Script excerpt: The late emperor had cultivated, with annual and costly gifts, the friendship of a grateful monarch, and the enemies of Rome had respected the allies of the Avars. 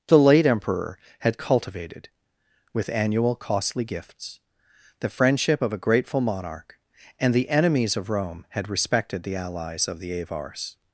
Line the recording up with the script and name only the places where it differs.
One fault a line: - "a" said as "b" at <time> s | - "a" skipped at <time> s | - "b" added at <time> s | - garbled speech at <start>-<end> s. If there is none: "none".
- "and" skipped at 3.4 s